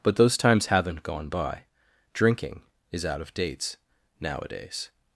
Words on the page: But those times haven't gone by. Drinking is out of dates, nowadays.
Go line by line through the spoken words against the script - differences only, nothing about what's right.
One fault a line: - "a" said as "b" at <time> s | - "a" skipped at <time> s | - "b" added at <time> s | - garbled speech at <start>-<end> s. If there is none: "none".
none